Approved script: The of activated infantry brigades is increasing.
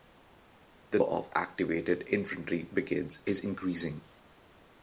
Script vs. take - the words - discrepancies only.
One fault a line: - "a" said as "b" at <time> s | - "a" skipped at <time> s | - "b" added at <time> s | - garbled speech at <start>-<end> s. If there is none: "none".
none